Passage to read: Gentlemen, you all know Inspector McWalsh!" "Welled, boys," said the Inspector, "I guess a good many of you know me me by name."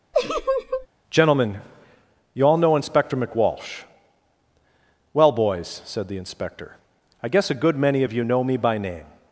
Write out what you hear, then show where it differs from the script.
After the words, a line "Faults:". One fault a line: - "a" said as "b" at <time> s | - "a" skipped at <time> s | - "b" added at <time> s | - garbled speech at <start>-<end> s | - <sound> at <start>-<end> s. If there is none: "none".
Gentlemen, you all know Inspector McWalsh!" "Well, boys," said the Inspector, "I guess a good many of you know me by name."
Faults:
- laugh at 0.1-0.9 s
- "Welled" said as "Well" at 5.1 s
- "me" skipped at 8.6 s